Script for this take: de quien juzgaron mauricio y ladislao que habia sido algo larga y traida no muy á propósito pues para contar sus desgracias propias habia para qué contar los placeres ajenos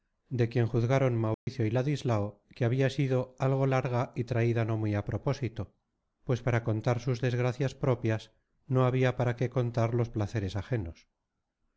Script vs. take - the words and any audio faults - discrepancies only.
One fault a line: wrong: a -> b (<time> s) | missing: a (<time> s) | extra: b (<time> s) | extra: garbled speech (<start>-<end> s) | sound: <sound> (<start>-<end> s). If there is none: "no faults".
sound: dropout (1.3-1.5 s)
extra: no (8.7 s)